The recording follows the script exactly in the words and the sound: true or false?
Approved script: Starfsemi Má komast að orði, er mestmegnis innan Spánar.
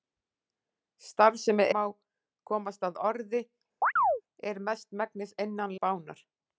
false